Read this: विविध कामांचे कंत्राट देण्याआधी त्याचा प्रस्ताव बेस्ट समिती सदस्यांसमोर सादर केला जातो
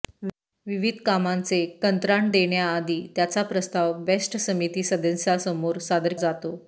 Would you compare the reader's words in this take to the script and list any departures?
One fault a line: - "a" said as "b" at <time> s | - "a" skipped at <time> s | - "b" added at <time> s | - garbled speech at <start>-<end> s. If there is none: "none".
- "केला" skipped at 6.1 s